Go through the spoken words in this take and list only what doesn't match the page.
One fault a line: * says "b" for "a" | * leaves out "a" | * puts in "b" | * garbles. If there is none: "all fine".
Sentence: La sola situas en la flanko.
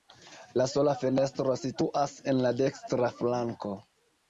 * puts in "fenestro"
* puts in "dekstra"